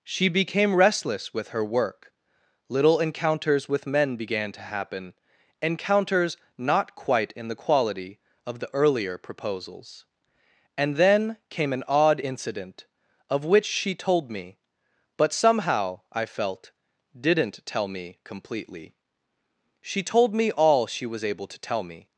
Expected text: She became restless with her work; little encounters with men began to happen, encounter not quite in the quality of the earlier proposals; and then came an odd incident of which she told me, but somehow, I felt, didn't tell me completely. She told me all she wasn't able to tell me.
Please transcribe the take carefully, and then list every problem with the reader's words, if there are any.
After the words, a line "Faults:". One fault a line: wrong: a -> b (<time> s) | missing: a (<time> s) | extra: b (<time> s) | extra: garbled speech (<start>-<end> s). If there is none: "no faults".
She became restless with her work; little encounters with men began to happen, encounters not quite in the quality of the earlier proposals; and then came an odd incident of which she told me, but somehow, I felt, didn't tell me completely. She told me all she was able to tell me.
Faults:
wrong: encounter -> encounters (5.6 s)
wrong: wasn't -> was (21.0 s)